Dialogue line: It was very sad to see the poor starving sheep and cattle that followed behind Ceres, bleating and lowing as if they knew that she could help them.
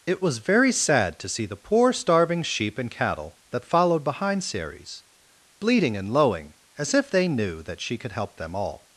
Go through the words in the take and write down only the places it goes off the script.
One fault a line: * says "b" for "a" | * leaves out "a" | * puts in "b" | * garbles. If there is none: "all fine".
* puts in "All"